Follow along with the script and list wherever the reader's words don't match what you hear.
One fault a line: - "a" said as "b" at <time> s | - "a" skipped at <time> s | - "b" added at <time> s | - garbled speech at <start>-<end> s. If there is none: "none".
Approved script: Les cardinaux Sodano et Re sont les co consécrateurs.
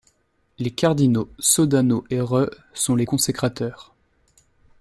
- "co" skipped at 3.0 s